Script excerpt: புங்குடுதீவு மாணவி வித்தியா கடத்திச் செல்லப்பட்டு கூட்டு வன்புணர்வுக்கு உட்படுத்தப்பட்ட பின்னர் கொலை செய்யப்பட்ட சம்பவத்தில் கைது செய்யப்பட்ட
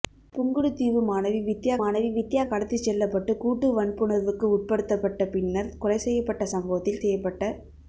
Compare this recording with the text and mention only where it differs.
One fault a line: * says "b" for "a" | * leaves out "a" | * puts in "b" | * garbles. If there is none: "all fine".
* puts in "மாணவி வித்தியா"
* leaves out "கைது"